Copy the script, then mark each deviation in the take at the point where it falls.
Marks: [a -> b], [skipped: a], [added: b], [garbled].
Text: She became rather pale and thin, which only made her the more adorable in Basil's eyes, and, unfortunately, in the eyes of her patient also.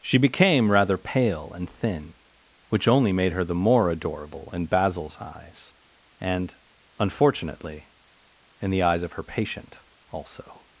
She became rather pale and thin, which only made her the more adorable in Basil's eyes, and, unfortunately, in the eyes of her patient also.